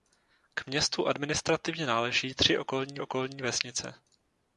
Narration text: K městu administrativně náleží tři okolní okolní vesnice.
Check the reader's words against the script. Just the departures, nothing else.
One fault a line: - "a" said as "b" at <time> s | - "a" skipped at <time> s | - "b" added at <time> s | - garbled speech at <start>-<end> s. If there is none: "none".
none